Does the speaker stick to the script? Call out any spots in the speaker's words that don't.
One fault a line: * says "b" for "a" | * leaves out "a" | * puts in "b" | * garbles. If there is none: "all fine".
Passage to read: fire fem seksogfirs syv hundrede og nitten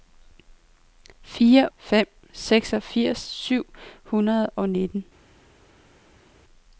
all fine